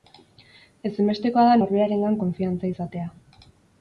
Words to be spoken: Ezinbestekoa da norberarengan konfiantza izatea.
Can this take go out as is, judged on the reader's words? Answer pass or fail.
pass